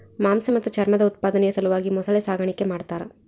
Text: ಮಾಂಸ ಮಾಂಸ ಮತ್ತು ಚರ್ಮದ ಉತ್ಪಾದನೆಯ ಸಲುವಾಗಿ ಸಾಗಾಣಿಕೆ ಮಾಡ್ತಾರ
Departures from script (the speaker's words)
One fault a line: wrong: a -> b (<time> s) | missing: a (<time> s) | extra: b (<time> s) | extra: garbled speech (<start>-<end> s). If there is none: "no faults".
missing: ಮಾಂಸ (0.5 s)
extra: ಮೊಸಳೆ (1.9 s)